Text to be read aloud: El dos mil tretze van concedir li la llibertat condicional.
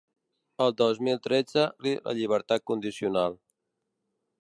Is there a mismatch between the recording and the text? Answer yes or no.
yes